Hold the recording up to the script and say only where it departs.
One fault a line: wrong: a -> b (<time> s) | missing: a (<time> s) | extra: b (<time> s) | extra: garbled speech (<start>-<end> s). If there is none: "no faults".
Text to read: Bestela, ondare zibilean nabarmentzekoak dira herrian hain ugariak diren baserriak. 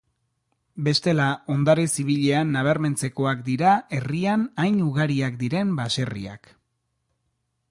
no faults